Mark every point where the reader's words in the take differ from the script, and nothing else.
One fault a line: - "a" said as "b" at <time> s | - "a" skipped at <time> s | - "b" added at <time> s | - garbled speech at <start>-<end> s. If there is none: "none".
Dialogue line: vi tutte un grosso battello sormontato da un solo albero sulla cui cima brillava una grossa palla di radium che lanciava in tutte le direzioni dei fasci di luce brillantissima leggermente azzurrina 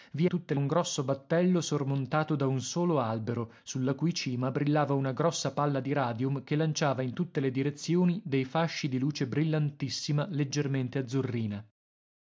none